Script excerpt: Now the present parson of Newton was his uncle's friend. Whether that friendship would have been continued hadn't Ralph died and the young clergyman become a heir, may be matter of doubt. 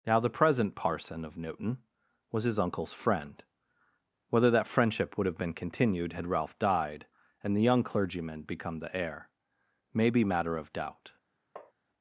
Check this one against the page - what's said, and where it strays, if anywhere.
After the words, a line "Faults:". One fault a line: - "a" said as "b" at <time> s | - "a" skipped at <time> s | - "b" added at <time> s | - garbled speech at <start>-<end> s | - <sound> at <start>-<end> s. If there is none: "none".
Now the present parson of Newton was his uncle's friend. Whether that friendship would have been continued had Ralph died and the young clergyman become the heir, may be matter of doubt.
Faults:
- "hadn't" said as "had" at 6.1 s
- "a" said as "the" at 8.8 s
- tap at 11.6-11.7 s